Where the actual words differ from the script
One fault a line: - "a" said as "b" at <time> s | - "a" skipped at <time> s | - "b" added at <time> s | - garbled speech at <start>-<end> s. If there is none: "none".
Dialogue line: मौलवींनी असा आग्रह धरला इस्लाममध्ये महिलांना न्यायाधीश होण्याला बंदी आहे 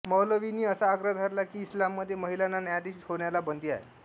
- "की" added at 1.4 s